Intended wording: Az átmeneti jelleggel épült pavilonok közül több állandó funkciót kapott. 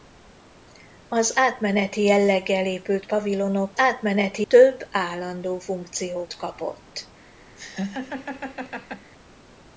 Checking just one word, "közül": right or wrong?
wrong